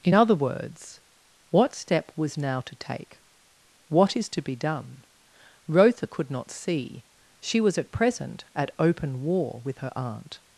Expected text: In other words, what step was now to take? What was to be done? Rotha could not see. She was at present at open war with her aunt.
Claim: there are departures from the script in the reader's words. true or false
true